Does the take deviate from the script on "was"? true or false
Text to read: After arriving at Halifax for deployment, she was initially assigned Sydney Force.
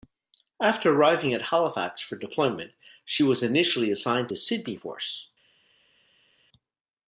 false